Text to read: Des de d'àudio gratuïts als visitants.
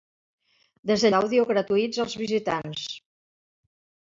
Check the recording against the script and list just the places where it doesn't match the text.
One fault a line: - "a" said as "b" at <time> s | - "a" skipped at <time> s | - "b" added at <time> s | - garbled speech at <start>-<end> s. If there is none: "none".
none